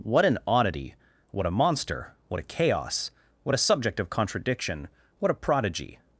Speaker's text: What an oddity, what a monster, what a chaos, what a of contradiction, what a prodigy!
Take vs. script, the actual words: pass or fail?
fail